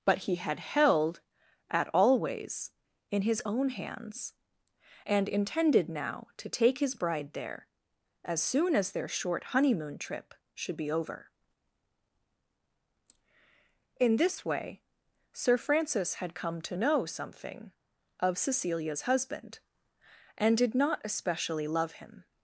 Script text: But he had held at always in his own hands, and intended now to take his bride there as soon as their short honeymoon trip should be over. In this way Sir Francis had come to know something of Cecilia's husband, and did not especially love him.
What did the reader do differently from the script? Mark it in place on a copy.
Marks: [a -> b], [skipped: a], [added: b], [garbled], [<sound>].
But he had held at always in his own hands, and intended now to take his bride there as soon as their short honeymoon trip should be over. In this way Sir Francis had come to know something of Cecilia's husband, and did not especially love him.